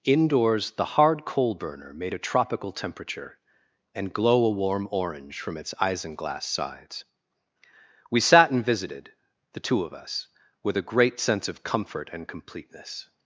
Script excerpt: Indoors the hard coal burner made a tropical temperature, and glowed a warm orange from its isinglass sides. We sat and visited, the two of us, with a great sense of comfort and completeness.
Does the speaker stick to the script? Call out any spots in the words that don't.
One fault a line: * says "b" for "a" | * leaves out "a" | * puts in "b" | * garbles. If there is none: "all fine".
* says "glow" for "glowed"